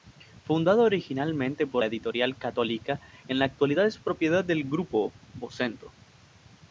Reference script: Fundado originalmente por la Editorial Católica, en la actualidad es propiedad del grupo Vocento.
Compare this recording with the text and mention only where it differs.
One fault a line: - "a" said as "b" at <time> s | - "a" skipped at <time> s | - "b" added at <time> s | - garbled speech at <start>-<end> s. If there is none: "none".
none